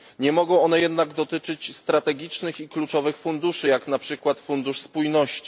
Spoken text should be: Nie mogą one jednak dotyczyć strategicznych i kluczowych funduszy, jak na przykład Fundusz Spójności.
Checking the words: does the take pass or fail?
pass